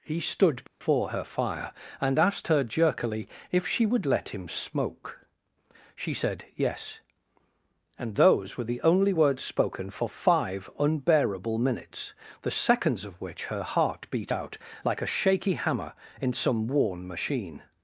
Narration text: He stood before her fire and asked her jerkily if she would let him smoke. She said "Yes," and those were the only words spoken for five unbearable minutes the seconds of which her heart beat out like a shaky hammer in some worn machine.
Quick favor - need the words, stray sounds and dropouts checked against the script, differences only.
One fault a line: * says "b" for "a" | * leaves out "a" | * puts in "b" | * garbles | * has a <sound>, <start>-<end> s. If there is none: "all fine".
* has a dropout, 0.7-0.8 s